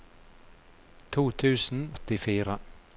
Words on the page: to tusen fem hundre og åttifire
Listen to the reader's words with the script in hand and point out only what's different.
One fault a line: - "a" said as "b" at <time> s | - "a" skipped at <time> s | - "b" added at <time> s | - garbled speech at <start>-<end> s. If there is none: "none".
- "fem hundre og" skipped at 1.8 s